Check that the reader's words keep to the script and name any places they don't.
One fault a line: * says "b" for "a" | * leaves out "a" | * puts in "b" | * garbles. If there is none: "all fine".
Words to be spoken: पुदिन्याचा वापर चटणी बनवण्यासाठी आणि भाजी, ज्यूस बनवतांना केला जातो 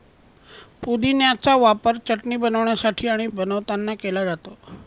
* leaves out "भाजी ज्यूस"